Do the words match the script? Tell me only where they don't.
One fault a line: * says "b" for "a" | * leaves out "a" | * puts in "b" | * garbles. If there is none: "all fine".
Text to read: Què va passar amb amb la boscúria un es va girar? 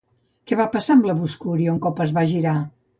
* leaves out "amb"
* puts in "cop"